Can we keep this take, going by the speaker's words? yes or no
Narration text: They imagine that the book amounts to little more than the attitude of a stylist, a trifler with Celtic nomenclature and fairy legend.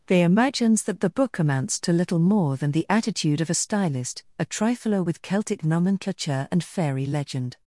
no